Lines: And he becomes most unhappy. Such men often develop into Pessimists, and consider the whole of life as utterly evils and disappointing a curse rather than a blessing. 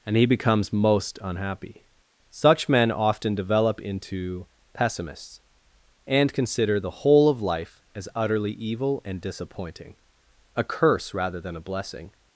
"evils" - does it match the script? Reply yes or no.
no